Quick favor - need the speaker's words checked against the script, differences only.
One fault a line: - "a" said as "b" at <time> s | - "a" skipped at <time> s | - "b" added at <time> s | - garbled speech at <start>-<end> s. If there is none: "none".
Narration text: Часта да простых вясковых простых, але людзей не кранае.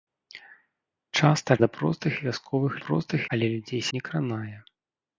none